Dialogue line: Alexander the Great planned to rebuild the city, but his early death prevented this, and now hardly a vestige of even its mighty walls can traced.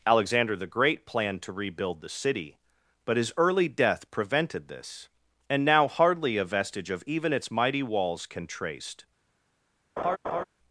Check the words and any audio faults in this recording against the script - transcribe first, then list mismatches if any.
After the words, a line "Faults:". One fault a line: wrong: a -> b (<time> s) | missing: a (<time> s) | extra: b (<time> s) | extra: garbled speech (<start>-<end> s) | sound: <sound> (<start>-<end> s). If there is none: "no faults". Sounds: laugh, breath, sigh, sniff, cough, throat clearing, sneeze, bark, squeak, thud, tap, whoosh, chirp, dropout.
Alexander the Great planned to rebuild the city, but his early death prevented this, and now hardly a vestige of even its mighty walls can traced.
Faults:
sound: laugh (10.0-10.4 s)